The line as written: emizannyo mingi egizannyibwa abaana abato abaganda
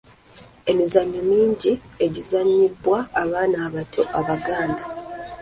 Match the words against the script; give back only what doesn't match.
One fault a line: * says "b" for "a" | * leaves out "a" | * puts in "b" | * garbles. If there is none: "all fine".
all fine